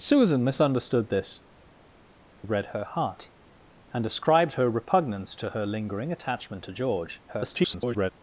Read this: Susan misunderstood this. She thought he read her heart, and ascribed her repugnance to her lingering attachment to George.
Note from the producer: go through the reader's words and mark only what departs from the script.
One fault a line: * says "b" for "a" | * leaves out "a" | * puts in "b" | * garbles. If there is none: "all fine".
* leaves out "She thought he"
* garbles